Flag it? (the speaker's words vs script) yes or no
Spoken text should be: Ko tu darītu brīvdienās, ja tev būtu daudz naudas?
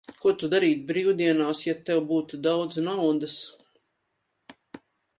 no